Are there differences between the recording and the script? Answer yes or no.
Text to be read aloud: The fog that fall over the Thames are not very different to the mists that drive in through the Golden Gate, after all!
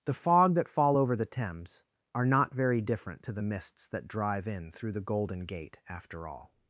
no